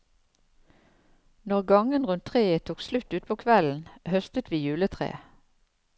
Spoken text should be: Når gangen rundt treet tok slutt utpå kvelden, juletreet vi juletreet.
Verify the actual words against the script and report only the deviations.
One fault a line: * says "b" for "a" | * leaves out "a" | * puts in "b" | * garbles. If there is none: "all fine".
* says "høstet" for "juletreet"